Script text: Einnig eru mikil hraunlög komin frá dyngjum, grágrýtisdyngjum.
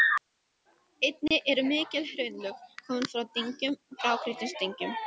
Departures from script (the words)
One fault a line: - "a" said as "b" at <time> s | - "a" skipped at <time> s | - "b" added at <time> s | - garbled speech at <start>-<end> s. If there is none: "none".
none